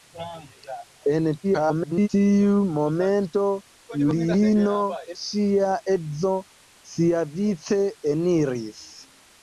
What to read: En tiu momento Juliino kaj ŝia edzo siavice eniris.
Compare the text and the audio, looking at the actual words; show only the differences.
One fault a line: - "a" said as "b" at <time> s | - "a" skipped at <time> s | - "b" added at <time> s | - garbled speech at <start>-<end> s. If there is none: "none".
- garbled speech at 1.4-2.1 s
- "kaj" skipped at 4.8 s